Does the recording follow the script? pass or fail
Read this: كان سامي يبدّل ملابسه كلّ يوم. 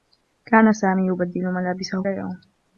fail